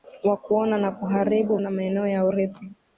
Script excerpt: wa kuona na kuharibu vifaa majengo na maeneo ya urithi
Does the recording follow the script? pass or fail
fail